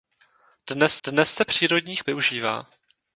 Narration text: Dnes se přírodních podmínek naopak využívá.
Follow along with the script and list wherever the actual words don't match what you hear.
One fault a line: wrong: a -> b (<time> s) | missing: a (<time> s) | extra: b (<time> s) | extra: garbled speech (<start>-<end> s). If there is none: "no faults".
extra: dnes (1.1 s)
missing: podmínek naopak (2.0 s)